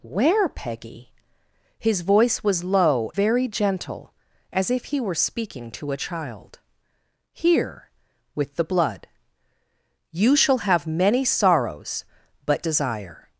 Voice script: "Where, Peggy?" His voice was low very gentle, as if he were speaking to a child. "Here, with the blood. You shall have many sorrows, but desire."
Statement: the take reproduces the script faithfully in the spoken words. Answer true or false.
true